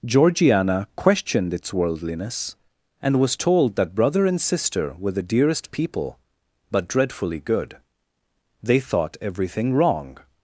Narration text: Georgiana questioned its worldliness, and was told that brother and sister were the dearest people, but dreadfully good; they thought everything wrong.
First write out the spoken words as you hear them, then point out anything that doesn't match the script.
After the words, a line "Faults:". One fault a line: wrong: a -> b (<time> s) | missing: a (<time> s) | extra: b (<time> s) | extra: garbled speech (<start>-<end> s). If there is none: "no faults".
Georgiana questioned its worldliness, and was told that brother and sister were the dearest people, but dreadfully good; they thought everything wrong.
Faults:
no faults